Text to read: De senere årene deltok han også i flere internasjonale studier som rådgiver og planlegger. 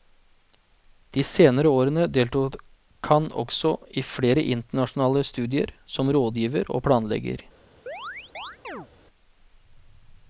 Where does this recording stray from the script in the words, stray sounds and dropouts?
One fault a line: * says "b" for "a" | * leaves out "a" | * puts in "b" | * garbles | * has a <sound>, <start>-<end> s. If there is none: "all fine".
* has a chirp, 7.9-8.9 s